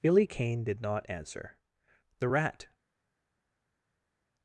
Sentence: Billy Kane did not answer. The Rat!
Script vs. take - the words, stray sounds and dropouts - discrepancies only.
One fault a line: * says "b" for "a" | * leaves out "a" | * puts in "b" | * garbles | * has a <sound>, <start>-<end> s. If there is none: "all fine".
all fine